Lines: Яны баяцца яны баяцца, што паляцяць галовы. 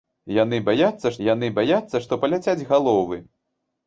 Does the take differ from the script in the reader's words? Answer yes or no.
no